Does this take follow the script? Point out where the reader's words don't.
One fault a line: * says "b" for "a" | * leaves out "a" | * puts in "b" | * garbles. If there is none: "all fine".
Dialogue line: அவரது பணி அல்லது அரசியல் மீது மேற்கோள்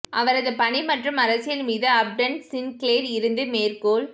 * says "மற்றும்" for "அல்லது"
* puts in "அப்டன் சின்க்ளேர் இருந்து"